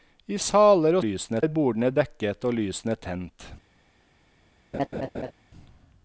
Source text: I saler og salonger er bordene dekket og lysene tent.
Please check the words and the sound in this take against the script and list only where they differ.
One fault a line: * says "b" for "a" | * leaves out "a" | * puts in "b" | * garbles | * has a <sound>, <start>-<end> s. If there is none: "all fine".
* says "lysene" for "salonger"
* has a laugh, 4.7-5.3 s